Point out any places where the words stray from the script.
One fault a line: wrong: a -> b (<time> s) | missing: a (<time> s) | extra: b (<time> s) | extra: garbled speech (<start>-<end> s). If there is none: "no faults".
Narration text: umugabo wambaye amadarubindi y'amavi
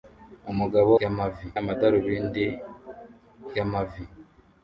wrong: wambaye -> y'amavi (1.0 s)